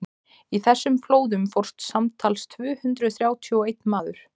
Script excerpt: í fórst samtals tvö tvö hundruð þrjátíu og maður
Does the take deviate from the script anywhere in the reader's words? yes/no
yes